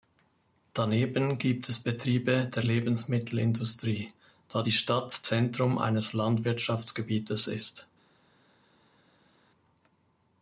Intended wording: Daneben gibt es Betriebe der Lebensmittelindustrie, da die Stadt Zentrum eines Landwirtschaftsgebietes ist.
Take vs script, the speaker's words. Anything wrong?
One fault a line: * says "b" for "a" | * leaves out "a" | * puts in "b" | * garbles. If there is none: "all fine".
all fine